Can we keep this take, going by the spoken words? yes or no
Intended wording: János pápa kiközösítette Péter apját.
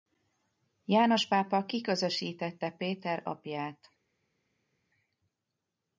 yes